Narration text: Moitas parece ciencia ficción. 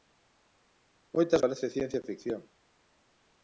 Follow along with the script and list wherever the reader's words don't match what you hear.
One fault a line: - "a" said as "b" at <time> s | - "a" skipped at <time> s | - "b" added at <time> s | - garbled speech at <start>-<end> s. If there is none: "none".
none